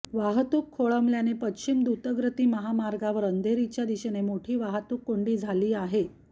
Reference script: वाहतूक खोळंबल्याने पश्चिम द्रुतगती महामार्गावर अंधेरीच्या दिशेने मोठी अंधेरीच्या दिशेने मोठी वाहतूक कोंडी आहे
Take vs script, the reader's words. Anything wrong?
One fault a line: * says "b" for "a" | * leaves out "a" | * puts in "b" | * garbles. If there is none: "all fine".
* leaves out "अंधेरीच्या दिशेने मोठी"
* puts in "झाली"